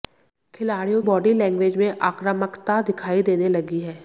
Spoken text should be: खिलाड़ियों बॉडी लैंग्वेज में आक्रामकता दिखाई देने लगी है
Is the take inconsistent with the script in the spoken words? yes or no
no